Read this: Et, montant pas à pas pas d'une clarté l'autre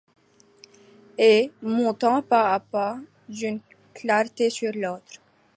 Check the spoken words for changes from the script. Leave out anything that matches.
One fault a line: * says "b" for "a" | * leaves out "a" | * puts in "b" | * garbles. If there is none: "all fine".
* leaves out "pas"
* puts in "sur"